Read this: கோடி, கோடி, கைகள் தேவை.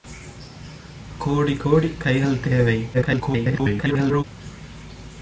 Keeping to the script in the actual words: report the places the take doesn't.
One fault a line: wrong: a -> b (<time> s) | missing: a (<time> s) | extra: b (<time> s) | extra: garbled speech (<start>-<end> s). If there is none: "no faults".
extra: garbled speech (2.9-4.2 s)